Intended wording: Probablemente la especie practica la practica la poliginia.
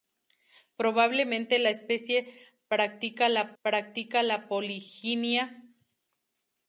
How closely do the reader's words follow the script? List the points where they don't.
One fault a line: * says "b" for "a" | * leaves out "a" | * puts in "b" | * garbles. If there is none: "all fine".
all fine